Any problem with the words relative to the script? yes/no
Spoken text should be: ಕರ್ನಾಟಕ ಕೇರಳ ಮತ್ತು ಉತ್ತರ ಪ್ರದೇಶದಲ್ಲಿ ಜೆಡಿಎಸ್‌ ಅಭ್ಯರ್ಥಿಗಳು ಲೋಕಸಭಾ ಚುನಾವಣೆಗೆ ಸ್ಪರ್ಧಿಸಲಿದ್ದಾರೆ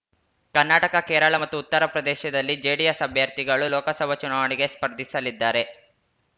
no